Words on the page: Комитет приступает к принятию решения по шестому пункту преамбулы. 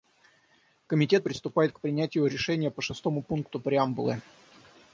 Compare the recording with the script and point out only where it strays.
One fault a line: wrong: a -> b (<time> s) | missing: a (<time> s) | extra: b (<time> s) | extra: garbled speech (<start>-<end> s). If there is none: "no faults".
no faults